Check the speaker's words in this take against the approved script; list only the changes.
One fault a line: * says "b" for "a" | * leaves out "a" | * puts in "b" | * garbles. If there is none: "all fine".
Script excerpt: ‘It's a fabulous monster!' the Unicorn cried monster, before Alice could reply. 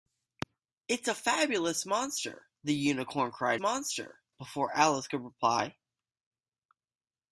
all fine